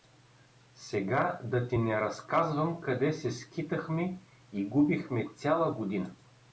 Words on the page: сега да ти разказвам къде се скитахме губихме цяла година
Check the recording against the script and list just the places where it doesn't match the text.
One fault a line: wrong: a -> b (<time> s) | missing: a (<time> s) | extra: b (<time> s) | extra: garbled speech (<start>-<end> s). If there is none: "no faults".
extra: не (1.8 s)
extra: и (4.5 s)